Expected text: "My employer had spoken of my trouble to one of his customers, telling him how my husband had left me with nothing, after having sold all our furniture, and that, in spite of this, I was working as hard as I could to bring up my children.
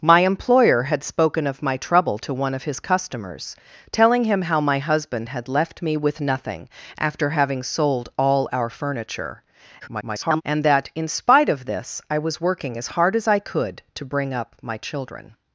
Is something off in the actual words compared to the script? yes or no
yes